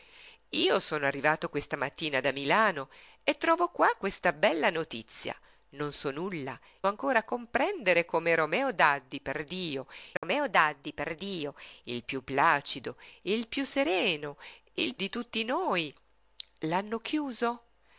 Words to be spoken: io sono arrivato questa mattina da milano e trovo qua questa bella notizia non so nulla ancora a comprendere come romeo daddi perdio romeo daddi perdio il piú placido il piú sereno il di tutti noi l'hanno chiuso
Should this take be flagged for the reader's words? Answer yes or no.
no